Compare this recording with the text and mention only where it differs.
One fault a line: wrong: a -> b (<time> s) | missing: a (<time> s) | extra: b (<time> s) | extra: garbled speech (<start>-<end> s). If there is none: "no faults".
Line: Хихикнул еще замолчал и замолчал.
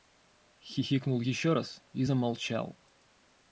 wrong: замолчал -> раз (1.5 s)